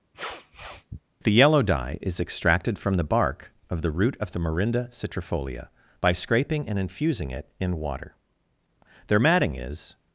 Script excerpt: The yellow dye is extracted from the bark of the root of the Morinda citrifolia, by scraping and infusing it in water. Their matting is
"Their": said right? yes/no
yes